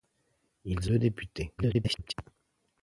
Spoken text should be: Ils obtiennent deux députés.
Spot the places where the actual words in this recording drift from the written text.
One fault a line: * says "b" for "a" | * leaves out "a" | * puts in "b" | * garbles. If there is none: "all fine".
* leaves out "obtiennent"
* garbles